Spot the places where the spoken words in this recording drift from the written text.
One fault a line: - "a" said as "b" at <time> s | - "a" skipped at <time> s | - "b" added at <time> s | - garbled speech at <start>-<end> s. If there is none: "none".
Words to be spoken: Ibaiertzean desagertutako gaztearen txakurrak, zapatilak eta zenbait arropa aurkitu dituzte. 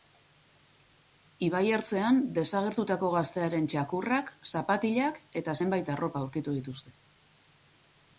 none